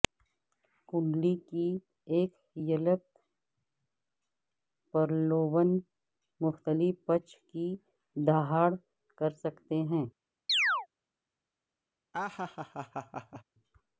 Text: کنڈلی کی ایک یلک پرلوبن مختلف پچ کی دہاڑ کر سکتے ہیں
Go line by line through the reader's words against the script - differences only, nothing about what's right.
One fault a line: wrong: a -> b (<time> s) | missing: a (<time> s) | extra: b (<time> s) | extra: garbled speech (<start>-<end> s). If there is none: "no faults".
no faults